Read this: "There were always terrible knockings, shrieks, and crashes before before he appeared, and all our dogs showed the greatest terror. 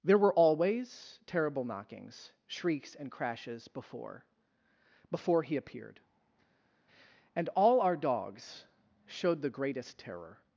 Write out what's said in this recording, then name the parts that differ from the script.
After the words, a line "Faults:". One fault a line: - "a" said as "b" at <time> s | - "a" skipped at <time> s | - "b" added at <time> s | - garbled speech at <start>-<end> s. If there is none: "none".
"There were always terrible knockings, shrieks, and crashes before before he appeared, and all our dogs showed the greatest terror.
Faults:
none